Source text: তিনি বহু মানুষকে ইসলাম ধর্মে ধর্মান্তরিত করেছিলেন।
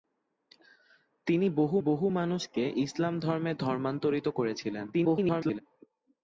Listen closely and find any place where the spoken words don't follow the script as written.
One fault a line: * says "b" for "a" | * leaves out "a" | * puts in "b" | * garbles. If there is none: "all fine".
* puts in "বহু"
* garbles